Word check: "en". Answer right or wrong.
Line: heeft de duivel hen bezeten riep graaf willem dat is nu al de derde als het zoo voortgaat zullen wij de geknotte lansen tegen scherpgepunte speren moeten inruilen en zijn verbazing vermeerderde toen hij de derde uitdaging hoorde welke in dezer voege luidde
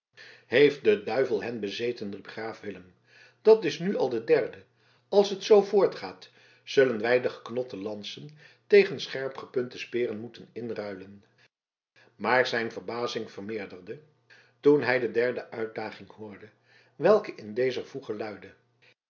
wrong